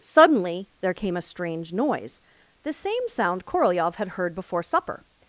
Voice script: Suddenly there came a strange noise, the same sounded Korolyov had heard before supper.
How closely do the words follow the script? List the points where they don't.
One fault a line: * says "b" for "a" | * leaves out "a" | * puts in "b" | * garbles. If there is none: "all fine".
* says "sound" for "sounded"